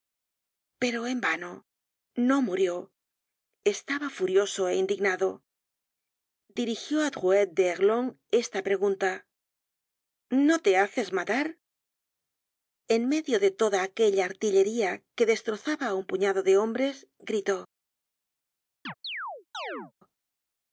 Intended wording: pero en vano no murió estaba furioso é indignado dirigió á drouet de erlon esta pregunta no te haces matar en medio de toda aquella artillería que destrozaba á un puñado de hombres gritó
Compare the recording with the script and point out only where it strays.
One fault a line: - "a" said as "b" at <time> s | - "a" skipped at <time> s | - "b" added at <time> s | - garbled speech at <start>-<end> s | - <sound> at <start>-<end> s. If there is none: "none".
- chirp at 18.9-19.9 s